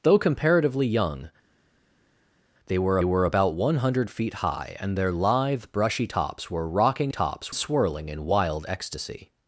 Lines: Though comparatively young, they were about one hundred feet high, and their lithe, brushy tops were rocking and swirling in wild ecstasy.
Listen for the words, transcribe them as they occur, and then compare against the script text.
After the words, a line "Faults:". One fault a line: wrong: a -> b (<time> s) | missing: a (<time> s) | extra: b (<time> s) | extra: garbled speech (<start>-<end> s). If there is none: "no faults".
Though comparatively young, they were were about one hundred feet high, and their lithe, brushy tops were rocking tops swirling in wild ecstasy.
Faults:
extra: were (3.0 s)
wrong: and -> tops (7.1 s)